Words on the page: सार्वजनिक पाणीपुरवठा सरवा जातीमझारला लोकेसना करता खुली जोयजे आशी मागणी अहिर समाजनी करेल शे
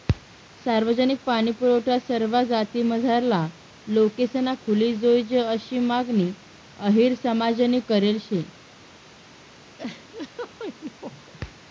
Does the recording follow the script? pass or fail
fail